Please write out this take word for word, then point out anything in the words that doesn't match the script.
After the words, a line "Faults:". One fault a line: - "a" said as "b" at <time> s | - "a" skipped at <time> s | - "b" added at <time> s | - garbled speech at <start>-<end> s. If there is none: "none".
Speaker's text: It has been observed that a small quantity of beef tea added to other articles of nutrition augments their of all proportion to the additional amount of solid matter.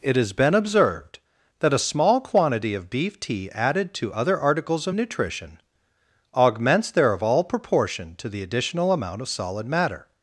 It has been observed that a small quantity of beef tea added to other articles of nutrition augments their of all proportion to the additional amount of solid matter.
Faults:
none